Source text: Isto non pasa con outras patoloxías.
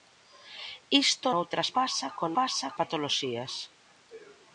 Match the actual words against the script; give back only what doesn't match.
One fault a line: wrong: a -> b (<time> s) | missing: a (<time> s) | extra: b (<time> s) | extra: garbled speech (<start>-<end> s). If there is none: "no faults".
wrong: non -> outras (1.4 s)
wrong: outras -> pasa (2.4 s)